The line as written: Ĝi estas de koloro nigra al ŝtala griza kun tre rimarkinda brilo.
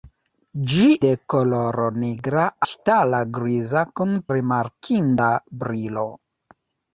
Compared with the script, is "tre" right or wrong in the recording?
wrong